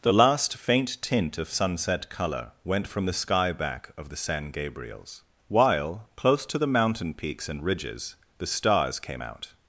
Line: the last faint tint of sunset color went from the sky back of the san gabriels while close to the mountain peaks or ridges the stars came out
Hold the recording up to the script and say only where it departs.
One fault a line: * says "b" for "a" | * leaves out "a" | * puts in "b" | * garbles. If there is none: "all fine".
* says "and" for "or"